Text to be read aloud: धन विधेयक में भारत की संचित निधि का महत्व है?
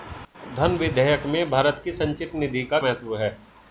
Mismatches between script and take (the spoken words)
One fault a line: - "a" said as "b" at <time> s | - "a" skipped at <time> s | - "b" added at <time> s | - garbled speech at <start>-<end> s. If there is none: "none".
none